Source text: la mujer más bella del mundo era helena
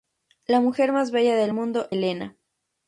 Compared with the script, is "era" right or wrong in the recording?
wrong